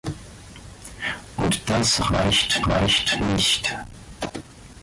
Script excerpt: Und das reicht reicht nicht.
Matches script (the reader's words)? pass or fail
pass